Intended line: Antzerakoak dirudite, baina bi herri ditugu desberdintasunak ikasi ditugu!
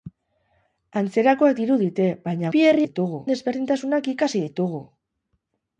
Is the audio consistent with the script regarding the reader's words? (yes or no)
yes